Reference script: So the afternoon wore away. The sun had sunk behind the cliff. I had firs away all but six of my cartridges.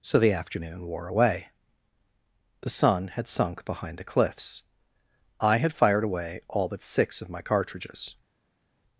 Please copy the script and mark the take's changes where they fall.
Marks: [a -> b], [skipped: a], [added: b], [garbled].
So the afternoon wore away. The sun had sunk behind the [cliff. -> cliffs] I had [firs -> fired] away all but six of my cartridges.